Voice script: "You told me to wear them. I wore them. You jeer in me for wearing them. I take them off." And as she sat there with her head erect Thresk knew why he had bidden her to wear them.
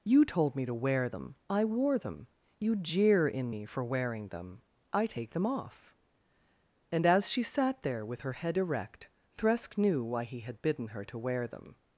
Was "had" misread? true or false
false